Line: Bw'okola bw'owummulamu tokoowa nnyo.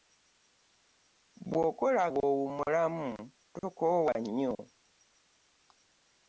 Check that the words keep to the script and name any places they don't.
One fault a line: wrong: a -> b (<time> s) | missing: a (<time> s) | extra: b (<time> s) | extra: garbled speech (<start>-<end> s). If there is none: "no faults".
no faults